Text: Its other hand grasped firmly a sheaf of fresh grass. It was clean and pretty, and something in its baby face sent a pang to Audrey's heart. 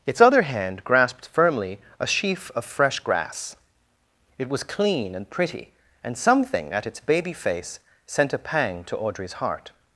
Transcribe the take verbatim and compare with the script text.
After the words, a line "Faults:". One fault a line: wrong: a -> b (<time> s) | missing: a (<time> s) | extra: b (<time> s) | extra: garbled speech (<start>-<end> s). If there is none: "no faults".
Its other hand grasped firmly a sheaf of fresh grass. It was clean and pretty, and something at its baby face sent a pang to Audrey's heart.
Faults:
wrong: in -> at (6.7 s)